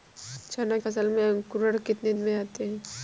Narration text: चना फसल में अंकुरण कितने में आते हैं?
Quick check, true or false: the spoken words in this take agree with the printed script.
true